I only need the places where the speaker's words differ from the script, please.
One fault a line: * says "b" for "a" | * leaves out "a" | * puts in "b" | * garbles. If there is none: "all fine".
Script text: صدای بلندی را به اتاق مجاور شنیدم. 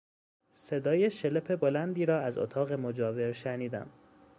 * puts in "شلپ"
* says "از" for "به"